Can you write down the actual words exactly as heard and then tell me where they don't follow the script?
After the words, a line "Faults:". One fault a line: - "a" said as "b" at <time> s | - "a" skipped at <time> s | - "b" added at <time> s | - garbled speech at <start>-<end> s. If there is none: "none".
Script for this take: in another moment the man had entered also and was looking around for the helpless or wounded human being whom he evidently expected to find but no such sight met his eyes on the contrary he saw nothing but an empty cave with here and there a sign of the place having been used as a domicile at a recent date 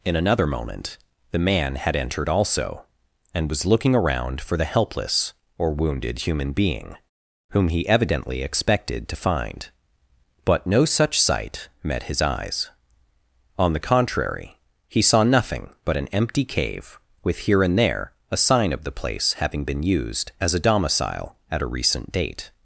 in another moment the man had entered also and was looking around for the helpless or wounded human being whom he evidently expected to find but no such sight met his eyes on the contrary he saw nothing but an empty cave with here and there a sign of the place having been used as a domicile at a recent date
Faults:
none